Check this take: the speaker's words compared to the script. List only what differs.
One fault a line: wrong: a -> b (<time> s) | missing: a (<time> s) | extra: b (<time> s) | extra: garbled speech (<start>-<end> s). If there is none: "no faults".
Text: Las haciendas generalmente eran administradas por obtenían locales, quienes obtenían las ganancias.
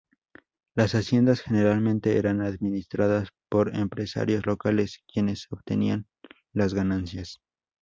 wrong: obtenían -> empresarios (3.8 s)